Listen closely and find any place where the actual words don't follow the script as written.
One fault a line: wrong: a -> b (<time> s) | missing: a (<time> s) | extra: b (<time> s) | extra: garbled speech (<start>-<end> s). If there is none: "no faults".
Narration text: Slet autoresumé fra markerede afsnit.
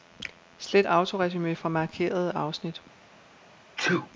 no faults